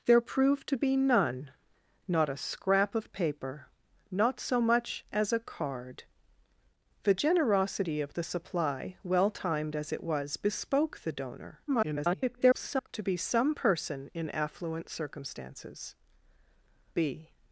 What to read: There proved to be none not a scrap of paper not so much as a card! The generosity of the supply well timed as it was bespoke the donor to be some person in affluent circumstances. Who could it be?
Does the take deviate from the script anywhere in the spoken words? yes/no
yes